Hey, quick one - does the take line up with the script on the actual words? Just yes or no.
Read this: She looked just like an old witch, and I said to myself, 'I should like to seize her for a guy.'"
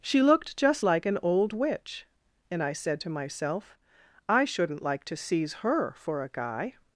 no